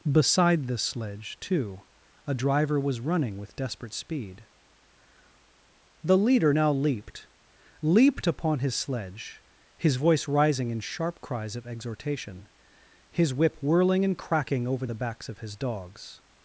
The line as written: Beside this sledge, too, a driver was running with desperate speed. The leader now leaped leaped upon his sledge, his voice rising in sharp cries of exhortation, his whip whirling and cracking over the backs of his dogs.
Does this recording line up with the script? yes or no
yes